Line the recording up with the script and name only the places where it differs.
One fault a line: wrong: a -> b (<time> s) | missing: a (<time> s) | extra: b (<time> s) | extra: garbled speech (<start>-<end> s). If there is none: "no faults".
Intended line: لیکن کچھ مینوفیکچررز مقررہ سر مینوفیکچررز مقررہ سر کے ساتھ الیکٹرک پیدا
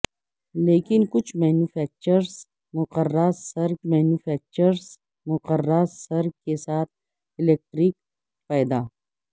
no faults